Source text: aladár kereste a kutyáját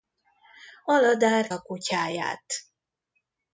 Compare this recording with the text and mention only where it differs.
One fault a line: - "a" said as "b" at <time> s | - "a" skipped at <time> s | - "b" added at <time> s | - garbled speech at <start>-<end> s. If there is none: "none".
- "kereste" skipped at 1.5 s